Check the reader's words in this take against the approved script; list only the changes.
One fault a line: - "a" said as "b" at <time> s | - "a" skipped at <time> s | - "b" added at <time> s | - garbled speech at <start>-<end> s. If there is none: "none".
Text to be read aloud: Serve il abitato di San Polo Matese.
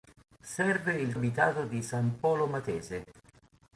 none